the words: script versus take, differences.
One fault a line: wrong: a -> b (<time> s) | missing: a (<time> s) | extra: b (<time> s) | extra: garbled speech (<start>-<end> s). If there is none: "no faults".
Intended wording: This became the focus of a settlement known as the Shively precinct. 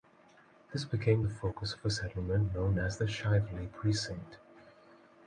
no faults